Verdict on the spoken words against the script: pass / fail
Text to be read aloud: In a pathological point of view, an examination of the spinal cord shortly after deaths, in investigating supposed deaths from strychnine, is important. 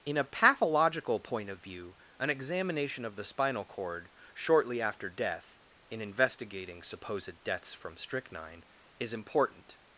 fail